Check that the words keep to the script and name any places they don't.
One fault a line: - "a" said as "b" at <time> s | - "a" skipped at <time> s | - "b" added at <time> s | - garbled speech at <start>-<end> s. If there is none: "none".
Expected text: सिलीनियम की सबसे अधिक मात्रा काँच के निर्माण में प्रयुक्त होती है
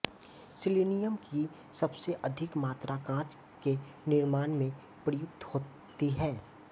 none